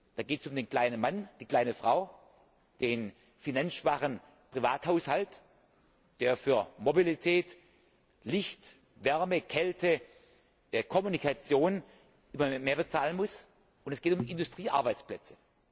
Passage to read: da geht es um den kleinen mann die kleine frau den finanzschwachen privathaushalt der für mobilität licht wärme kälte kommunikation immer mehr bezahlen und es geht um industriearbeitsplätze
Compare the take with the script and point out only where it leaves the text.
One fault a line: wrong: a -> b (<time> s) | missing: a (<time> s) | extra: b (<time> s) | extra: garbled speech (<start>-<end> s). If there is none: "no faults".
extra: muss (13.2 s)